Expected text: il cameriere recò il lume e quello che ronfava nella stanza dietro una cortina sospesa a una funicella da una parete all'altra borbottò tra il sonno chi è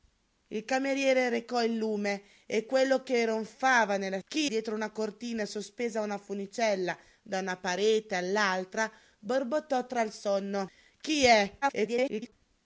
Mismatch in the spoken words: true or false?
true